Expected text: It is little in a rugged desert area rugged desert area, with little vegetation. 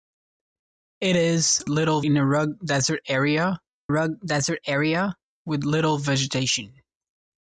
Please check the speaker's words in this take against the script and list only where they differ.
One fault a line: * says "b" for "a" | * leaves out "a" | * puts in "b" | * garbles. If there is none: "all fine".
all fine